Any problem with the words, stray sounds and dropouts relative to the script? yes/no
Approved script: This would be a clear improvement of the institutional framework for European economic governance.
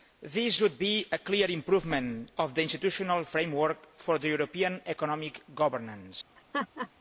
yes